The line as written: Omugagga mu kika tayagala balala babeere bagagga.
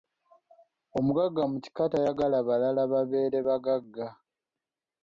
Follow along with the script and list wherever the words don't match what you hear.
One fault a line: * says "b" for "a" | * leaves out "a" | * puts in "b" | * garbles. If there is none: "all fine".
all fine